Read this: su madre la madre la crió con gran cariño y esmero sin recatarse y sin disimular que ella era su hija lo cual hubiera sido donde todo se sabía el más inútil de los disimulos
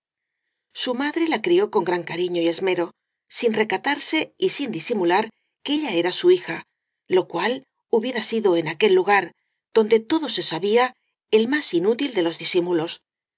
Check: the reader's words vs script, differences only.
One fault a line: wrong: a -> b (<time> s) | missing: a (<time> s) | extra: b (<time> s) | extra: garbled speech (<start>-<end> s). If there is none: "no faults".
missing: madre la (1.4 s)
extra: en aquel lugar (8.6 s)